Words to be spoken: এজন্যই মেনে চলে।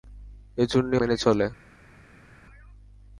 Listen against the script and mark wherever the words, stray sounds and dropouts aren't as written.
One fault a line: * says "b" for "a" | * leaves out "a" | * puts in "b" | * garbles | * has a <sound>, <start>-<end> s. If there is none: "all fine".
all fine